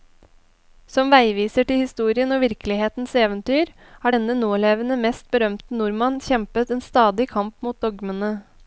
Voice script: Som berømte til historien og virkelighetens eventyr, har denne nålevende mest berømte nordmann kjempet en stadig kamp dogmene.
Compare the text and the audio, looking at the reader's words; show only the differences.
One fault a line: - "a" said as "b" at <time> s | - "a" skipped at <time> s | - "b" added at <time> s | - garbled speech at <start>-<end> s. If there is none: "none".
- "berømte" said as "veiviser" at 1.1 s
- "mot" added at 7.7 s